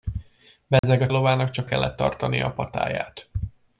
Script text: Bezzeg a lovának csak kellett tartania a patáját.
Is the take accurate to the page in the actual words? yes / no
yes